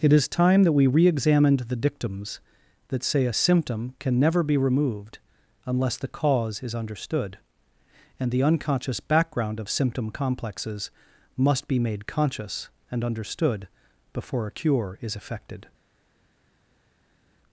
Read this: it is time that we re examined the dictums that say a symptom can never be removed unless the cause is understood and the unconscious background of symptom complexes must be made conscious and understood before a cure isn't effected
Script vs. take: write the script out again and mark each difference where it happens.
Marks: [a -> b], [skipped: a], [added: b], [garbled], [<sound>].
it is time that we re examined the dictums that say a symptom can never be removed unless the cause is understood and the unconscious background of symptom complexes must be made conscious and understood before a cure [isn't -> is] effected